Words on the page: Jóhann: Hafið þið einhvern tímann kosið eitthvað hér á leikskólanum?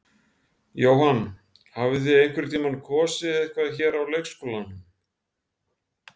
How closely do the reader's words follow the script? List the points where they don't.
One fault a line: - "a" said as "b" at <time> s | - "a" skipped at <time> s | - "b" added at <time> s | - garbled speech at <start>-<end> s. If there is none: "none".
none